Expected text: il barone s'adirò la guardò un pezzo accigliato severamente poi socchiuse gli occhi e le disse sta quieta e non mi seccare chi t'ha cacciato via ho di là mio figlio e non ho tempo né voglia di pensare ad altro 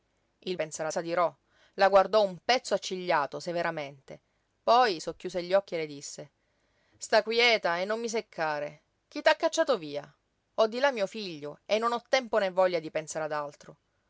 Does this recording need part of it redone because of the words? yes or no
yes